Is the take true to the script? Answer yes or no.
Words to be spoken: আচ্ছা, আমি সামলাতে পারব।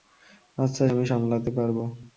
yes